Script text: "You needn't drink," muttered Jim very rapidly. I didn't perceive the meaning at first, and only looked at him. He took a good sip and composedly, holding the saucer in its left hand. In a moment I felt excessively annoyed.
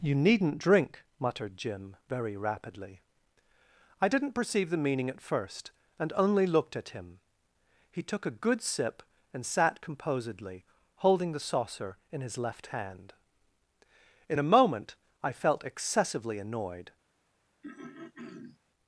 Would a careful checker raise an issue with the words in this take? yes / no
yes